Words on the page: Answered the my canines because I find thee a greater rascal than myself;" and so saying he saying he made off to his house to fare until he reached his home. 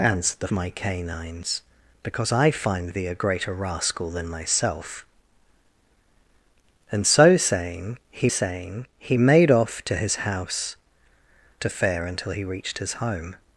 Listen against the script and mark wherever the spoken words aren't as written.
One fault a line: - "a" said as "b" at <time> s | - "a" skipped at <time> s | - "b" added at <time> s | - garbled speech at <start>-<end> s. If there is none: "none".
none